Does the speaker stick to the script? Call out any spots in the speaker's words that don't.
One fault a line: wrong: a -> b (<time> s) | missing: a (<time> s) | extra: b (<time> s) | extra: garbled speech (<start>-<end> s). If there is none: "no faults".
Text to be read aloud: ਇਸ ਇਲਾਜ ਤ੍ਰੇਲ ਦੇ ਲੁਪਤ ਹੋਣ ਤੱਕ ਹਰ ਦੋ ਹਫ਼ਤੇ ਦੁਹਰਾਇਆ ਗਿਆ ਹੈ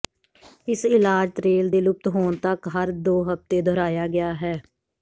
no faults